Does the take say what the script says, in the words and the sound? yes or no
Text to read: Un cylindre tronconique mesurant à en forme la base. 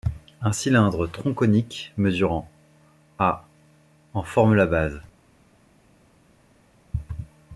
yes